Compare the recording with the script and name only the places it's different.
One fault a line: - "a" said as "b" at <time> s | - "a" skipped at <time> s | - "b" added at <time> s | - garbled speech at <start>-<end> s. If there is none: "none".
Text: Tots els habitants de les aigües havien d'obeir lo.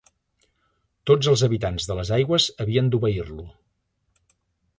none